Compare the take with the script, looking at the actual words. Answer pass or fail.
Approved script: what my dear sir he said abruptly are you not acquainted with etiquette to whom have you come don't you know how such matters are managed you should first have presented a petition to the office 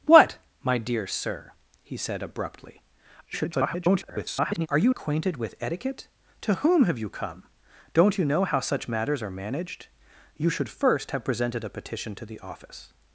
fail